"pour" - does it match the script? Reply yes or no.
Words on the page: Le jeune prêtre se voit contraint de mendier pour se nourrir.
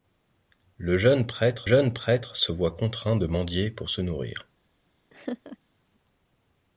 yes